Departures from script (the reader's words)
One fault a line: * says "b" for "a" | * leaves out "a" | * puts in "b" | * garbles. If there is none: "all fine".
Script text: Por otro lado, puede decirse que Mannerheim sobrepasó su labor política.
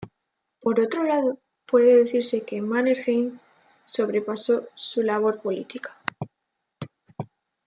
all fine